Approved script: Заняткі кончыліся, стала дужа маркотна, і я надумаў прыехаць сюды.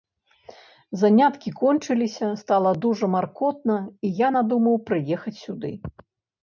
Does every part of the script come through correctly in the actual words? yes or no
yes